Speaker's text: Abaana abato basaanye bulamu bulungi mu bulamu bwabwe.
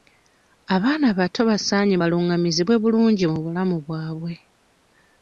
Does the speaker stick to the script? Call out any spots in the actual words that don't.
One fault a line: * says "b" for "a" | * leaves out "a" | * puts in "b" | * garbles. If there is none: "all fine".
* says "balungamizibwe" for "bulamu"